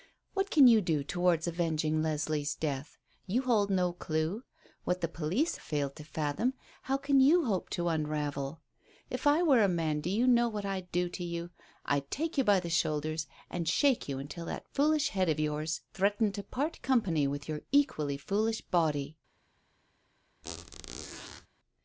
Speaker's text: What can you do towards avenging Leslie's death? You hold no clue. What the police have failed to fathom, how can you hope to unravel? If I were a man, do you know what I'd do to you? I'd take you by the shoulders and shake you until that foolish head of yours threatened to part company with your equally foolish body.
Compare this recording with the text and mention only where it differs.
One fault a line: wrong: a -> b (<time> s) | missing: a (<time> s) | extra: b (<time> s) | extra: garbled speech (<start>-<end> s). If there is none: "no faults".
missing: have (5.6 s)